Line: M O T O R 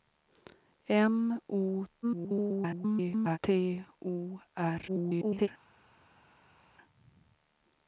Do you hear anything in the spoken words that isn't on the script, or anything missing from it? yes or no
yes